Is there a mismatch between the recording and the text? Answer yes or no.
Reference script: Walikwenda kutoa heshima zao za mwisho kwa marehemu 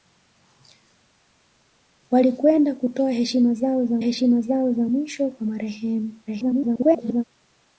yes